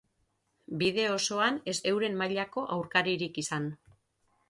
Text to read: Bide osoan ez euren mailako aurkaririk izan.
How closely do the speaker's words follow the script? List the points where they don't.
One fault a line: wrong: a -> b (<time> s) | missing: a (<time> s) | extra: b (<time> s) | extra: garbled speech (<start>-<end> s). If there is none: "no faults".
no faults